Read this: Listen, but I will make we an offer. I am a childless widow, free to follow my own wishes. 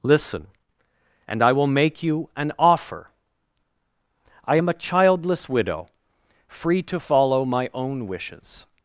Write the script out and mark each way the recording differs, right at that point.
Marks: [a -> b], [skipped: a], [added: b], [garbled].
Listen, [but -> and] I will make [we -> you] an offer. I am a childless widow, free to follow my own wishes.